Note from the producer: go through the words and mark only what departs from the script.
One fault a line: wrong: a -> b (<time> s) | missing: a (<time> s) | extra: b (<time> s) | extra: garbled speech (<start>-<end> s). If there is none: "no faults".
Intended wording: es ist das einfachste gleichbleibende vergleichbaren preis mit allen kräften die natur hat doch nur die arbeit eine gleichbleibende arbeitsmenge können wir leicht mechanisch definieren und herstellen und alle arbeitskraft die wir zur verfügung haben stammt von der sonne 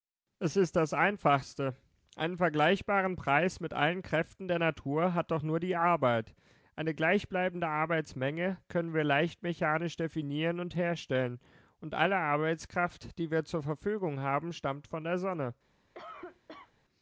wrong: gleichbleibende -> einen (2.1 s)
wrong: die -> der (4.5 s)